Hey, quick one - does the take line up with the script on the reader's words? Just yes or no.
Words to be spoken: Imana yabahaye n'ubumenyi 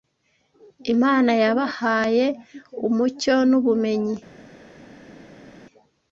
no